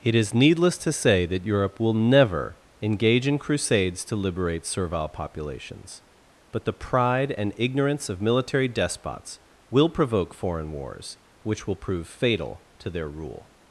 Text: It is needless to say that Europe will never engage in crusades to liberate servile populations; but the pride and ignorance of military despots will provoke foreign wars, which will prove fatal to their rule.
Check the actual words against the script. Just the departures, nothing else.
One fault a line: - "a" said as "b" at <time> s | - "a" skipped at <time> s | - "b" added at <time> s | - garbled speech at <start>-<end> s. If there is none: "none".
none